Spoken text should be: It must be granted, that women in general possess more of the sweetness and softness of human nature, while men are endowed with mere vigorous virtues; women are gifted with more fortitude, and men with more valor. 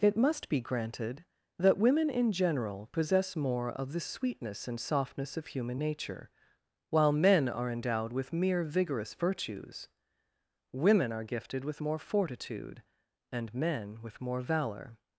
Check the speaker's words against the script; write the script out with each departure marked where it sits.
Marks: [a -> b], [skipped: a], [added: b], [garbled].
It must be granted, that women in general possess more of the sweetness and softness of human nature, while men are endowed with mere vigorous virtues; women are gifted with more fortitude, and men with more valor.